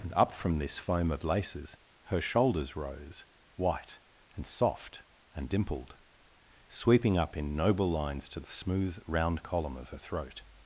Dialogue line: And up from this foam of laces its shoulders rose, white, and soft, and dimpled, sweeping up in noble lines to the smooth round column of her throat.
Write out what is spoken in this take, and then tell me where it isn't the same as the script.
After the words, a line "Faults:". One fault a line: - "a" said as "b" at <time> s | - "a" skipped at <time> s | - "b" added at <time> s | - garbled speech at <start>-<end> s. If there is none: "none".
And up from this foam of laces her shoulders rose, white, and soft, and dimpled, sweeping up in noble lines to the smooth round column of her throat.
Faults:
- "its" said as "her" at 2.0 s